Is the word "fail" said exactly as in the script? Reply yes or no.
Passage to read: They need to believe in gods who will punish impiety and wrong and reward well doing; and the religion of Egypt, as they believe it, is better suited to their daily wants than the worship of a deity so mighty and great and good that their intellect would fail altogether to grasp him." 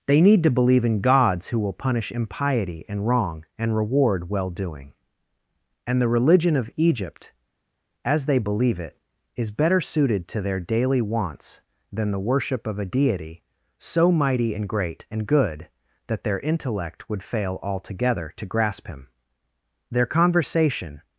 yes